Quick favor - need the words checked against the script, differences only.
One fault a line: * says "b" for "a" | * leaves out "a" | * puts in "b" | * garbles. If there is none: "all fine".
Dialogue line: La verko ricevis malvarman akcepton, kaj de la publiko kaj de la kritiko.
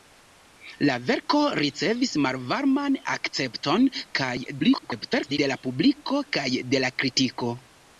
* garbles